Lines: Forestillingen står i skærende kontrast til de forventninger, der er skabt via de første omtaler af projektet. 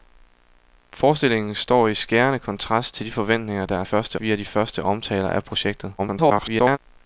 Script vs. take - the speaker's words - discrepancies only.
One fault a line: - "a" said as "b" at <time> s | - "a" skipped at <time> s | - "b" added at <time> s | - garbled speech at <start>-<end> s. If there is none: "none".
- "skabt" said as "første" at 3.8 s
- garbled speech at 6.0-6.8 s